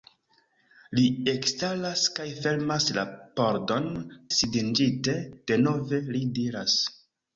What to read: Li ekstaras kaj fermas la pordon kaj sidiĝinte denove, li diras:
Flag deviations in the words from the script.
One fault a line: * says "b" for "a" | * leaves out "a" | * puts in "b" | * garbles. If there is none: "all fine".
* leaves out "kaj"